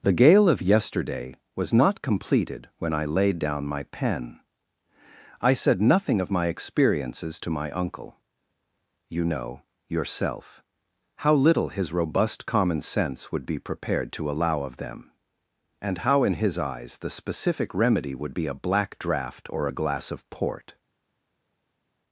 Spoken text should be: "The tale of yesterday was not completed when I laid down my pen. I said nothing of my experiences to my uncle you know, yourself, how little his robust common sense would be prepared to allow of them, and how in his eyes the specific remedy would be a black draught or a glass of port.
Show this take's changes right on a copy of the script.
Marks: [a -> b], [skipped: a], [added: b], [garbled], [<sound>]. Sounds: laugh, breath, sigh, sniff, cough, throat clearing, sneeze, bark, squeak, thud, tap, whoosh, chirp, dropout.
"The [tale -> gale] of yesterday was not completed when I laid down my pen. I said nothing of my experiences to my uncle you know, yourself, how little his robust common sense would be prepared to allow of them, and how in his eyes the specific remedy would be a black draught or a glass of port.